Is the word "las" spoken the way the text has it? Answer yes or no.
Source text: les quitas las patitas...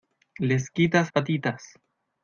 no